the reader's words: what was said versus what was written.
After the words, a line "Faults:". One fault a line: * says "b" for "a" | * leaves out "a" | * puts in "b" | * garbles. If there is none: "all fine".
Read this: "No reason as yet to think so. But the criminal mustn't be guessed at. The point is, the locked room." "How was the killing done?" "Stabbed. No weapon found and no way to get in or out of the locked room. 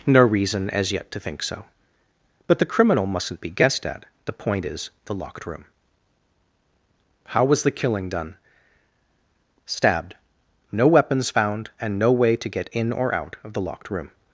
"No reason as yet to think so. But the criminal mustn't be guessed at. The point is, the locked room." "How was the killing done?" "Stabbed. No weapons found and no way to get in or out of the locked room.
Faults:
* says "weapons" for "weapon"